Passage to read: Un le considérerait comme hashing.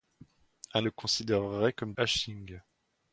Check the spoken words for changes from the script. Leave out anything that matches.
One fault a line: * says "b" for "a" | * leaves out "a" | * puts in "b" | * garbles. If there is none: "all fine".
all fine